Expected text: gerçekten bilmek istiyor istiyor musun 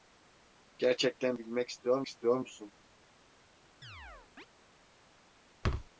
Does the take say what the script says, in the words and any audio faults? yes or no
no